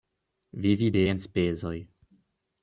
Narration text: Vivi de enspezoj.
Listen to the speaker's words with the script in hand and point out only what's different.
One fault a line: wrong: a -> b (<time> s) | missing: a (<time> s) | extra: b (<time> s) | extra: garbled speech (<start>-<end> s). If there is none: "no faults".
no faults